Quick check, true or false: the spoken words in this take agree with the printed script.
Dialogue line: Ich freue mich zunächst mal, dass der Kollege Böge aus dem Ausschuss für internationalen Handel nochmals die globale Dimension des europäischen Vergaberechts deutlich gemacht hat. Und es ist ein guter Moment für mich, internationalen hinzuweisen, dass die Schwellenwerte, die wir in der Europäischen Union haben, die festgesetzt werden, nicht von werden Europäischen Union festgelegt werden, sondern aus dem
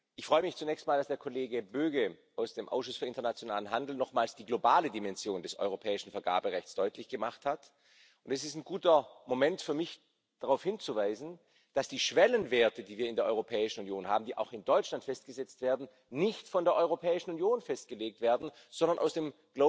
false